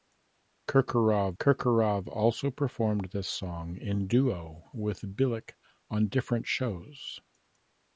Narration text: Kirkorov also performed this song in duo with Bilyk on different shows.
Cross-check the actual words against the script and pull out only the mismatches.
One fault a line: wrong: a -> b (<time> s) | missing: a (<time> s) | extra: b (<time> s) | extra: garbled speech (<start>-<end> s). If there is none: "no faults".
extra: kirkorov (1.4 s)